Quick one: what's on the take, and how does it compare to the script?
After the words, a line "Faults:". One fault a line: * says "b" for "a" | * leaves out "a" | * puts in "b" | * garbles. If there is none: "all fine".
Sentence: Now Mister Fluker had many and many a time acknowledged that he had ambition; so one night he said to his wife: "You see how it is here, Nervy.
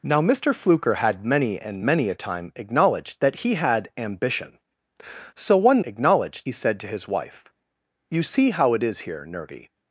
Now Mister Fluker had many and many a time acknowledged that he had ambition; so one acknowledged he said to his wife: "You see how it is here, Nervy.
Faults:
* says "acknowledged" for "night"